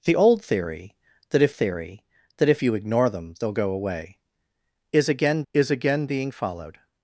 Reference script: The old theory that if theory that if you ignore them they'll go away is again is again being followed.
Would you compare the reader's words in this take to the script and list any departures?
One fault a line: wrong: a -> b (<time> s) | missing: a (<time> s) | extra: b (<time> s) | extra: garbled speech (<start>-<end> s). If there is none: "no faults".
no faults